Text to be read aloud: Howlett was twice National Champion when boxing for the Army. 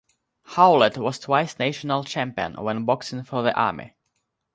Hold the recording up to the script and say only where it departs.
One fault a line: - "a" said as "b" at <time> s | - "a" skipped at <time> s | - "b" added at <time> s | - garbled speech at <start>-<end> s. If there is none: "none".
none